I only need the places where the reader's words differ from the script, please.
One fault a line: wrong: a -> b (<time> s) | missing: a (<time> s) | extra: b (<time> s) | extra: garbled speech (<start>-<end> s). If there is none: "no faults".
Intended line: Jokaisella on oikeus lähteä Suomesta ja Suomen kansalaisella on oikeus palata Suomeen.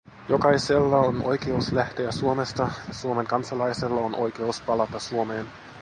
no faults